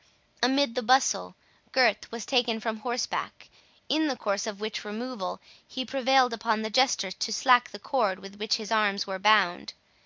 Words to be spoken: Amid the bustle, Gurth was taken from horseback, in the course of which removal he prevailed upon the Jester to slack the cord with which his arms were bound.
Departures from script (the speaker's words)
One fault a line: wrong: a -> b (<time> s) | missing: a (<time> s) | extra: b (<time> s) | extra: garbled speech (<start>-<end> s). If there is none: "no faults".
no faults